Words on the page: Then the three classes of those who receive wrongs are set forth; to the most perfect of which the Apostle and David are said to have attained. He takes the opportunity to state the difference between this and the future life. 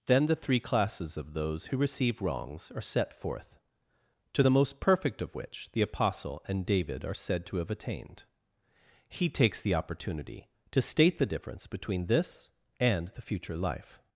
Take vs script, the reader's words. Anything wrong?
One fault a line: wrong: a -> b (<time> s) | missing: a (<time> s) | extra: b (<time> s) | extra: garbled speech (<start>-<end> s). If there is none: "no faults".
no faults